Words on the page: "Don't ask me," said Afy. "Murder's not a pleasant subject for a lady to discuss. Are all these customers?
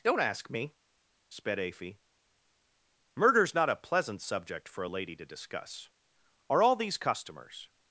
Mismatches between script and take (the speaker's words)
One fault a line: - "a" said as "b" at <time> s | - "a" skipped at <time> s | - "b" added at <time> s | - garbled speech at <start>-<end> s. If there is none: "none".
- "said" said as "sped" at 1.3 s